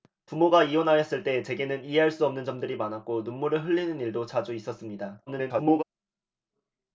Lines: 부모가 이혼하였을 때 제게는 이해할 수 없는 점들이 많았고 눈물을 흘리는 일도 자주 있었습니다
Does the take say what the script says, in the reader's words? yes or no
no